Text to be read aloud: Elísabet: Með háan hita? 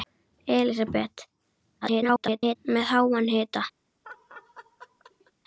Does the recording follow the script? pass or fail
fail